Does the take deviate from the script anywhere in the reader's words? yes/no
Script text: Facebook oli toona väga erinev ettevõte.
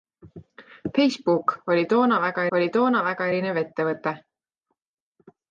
yes